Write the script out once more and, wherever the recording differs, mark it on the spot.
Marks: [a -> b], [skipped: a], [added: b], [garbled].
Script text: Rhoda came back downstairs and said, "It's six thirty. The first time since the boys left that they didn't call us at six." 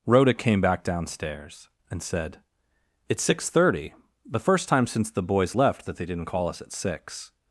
Rhoda came back downstairs and said, "It's six thirty. The first time since the boys left that they didn't call us at six."